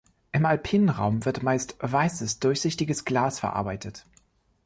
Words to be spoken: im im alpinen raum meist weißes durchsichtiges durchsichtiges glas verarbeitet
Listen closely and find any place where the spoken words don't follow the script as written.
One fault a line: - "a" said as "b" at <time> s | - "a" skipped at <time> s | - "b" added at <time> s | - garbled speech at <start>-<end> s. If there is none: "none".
- "im" skipped at 0.5 s
- "wird" added at 1.2 s
- "durchsichtiges" skipped at 3.0 s